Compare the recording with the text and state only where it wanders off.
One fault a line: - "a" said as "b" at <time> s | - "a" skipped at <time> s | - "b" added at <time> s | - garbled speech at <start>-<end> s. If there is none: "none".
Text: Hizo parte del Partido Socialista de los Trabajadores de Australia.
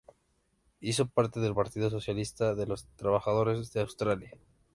none